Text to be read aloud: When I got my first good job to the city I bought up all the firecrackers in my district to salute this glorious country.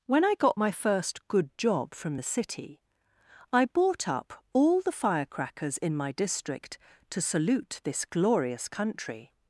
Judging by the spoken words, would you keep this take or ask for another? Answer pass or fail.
fail